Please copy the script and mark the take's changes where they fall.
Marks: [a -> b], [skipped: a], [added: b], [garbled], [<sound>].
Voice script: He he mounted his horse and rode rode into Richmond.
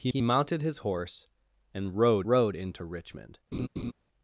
He he mounted his horse and rode rode into Richmond. [laugh]